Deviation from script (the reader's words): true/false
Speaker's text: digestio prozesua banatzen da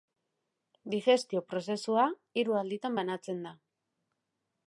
true